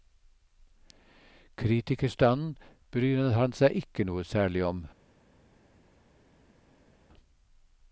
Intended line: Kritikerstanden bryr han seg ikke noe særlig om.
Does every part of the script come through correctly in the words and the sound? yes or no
yes